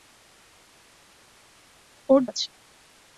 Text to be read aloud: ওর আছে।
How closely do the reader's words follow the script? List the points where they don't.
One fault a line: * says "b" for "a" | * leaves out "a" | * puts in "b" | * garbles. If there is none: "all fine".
all fine